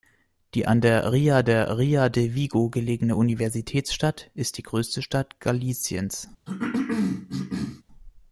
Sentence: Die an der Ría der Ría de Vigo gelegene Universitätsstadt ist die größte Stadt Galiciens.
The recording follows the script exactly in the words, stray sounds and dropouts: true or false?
false